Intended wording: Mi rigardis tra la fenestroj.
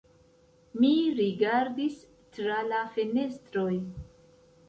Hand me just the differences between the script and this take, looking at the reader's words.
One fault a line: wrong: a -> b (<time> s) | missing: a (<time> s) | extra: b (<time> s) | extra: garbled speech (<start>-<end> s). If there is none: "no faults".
no faults